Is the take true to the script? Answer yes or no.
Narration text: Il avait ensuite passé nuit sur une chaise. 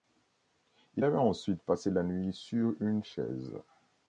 no